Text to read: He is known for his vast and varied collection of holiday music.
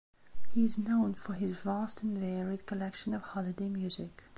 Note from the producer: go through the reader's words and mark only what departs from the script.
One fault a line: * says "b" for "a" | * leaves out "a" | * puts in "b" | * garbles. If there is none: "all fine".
all fine